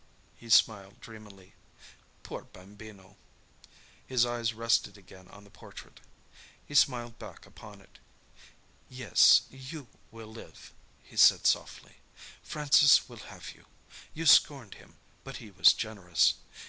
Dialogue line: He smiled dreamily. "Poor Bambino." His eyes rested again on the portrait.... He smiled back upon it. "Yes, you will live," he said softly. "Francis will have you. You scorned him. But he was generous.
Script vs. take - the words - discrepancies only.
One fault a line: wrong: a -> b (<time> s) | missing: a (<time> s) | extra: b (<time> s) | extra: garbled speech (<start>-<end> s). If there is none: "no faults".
no faults